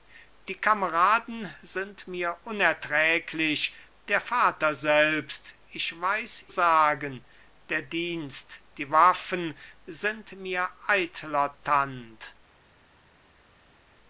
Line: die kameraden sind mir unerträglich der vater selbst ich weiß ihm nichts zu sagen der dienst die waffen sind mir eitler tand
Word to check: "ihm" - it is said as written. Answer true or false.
false